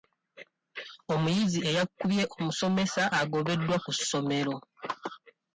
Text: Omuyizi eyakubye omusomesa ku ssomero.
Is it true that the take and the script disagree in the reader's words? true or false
true